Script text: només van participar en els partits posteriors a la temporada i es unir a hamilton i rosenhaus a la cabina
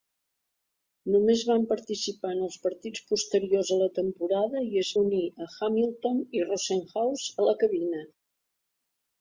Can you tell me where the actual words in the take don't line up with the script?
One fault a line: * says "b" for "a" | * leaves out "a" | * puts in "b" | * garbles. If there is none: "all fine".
all fine